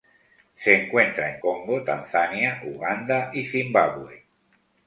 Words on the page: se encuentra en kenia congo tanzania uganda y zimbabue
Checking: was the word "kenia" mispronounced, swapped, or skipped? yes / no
yes